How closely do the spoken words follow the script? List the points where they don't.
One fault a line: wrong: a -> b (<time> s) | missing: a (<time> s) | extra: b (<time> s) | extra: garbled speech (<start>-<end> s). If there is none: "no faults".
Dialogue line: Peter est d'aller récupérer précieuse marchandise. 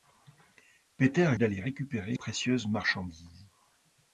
no faults